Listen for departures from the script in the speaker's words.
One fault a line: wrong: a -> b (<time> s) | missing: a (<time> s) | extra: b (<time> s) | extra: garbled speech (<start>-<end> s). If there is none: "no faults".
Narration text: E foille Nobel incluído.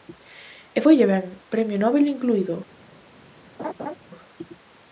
extra: ben premio (1.1 s)